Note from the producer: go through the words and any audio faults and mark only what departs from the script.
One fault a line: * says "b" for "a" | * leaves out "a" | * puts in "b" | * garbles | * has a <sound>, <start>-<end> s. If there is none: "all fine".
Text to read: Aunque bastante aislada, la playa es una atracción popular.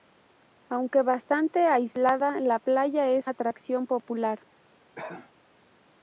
* leaves out "una"
* has a cough, 5.0-5.3 s